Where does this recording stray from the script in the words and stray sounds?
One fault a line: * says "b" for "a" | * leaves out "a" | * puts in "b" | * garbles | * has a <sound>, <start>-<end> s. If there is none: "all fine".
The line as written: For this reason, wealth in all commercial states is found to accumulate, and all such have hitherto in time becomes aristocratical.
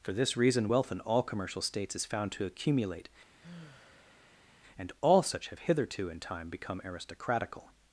* has a sigh, 3.4-4.5 s
* says "become" for "becomes"